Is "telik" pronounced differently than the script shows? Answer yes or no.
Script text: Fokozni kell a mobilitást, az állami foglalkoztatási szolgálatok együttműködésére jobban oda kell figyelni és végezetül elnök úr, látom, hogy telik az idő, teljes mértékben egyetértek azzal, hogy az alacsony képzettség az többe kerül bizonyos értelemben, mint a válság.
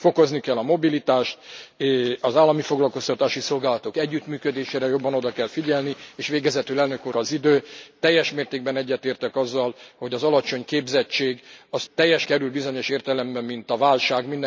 yes